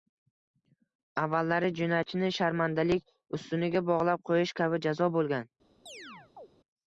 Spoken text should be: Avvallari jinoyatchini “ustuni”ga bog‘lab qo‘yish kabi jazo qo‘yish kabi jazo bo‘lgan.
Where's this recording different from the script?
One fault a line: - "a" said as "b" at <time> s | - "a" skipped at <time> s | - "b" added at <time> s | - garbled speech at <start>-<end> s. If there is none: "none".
- "sharmandalik" added at 2.4 s
- "qo‘yish kabi jazo" skipped at 5.2 s